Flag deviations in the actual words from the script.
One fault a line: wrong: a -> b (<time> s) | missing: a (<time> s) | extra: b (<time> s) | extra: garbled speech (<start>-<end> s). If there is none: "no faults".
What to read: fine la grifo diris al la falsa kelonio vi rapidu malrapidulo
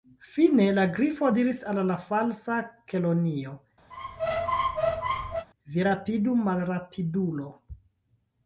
no faults